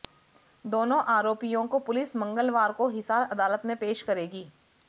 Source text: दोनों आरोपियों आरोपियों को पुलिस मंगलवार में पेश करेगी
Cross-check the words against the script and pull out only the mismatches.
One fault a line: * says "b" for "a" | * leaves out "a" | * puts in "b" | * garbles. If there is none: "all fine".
* leaves out "आरोपियों"
* puts in "को हिसार अदालत"